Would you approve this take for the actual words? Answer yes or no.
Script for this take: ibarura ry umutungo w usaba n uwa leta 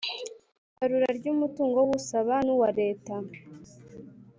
yes